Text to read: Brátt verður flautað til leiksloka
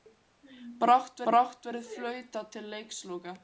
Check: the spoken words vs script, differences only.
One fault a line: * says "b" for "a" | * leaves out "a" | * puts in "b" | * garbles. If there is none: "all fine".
* puts in "brátt"